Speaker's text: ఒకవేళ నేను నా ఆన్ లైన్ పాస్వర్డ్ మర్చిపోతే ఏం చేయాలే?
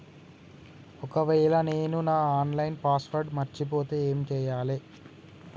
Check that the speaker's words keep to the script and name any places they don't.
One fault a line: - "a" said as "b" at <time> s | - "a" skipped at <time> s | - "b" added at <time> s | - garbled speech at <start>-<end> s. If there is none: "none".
none